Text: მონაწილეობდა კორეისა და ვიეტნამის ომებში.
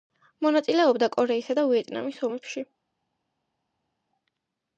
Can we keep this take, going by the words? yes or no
yes